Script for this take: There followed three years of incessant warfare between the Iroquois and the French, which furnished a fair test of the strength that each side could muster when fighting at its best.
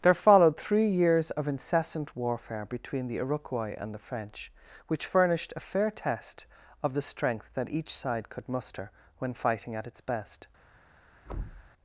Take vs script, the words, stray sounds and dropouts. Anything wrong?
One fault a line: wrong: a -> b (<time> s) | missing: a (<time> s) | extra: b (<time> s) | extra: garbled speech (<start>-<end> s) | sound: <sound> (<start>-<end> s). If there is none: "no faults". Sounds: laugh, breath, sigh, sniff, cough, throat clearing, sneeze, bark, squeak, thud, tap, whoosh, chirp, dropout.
sound: thud (11.2-11.7 s)